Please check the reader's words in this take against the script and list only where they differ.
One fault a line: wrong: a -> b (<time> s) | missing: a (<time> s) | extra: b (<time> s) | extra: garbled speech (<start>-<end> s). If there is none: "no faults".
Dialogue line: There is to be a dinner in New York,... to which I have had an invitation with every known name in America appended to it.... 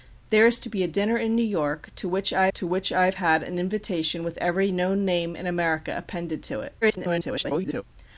extra: to which I (2.6 s)
extra: garbled speech (6.8-7.8 s)